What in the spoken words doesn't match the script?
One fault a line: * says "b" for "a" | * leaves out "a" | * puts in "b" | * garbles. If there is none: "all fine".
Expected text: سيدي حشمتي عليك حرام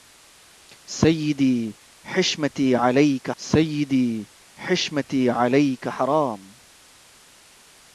* puts in "سيدي حشمتي عليك"